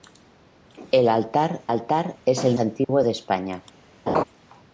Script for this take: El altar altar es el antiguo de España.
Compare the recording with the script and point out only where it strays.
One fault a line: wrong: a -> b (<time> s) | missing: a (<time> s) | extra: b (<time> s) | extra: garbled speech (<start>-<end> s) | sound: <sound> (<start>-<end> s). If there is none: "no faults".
sound: dropout (2.8-2.9 s)
sound: laugh (4.1-4.2 s)